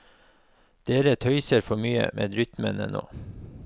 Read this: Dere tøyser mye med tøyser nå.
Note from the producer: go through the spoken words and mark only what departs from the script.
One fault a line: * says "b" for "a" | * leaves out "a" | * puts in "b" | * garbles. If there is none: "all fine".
* puts in "for"
* says "rytmene" for "tøyser"